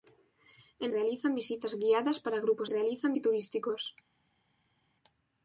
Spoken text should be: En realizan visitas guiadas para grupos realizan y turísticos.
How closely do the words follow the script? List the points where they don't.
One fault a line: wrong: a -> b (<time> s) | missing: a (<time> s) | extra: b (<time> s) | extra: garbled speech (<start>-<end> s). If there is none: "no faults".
no faults